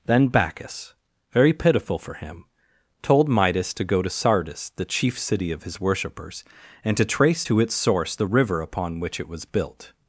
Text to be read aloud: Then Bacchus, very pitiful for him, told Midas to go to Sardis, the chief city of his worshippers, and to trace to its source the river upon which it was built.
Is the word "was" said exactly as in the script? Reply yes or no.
yes